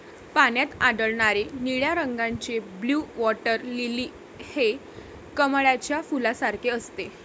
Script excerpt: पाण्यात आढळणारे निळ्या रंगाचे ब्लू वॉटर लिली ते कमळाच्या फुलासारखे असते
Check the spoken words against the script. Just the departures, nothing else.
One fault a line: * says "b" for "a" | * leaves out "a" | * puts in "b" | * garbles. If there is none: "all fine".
* says "हे" for "ते"